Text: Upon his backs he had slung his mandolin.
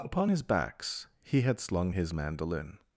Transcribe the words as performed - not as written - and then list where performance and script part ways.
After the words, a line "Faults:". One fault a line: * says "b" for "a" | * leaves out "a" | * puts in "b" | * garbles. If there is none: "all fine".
Upon his backs he had slung his mandolin.
Faults:
all fine